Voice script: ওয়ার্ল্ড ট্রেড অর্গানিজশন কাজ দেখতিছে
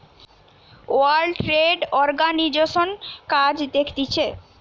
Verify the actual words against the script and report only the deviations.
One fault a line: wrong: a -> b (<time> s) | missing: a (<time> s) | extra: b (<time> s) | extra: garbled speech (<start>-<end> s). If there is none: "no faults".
no faults